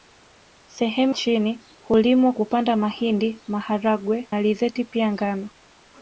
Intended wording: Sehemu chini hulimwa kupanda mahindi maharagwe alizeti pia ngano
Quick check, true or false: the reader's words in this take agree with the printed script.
true